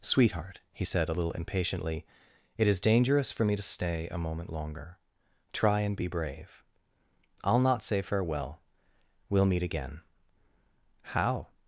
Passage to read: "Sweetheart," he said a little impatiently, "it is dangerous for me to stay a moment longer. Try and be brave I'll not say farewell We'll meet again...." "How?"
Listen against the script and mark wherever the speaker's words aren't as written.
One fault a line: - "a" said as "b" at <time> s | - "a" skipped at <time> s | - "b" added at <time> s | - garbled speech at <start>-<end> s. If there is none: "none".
none